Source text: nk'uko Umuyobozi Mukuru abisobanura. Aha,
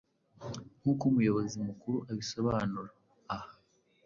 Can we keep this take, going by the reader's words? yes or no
yes